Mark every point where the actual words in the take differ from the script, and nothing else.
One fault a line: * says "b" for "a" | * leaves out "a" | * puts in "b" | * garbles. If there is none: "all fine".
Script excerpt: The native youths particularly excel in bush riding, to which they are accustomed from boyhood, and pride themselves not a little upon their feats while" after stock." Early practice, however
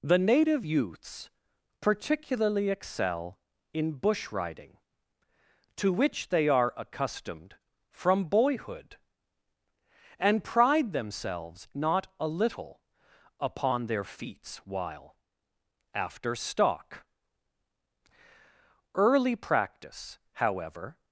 all fine